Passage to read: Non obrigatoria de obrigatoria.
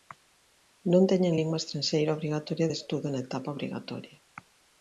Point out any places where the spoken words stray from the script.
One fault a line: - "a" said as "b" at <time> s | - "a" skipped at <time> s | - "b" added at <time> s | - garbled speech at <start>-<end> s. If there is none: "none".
- "teñen lingua estranxeira" added at 1.1 s
- "estudo na etapa" added at 2.8 s